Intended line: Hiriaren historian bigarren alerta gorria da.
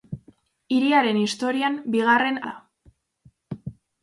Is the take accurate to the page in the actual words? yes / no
no